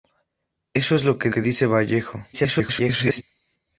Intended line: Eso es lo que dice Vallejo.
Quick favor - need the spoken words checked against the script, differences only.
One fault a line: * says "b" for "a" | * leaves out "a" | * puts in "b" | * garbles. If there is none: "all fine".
* puts in "que"
* garbles